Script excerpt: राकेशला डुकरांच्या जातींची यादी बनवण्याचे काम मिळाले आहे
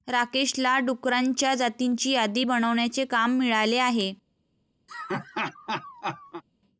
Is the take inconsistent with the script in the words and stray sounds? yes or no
yes